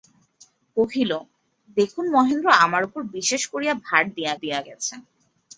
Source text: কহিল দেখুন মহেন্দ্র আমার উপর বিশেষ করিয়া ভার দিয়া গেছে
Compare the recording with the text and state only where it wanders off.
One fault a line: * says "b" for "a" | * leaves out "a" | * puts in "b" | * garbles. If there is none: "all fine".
* puts in "দিয়া"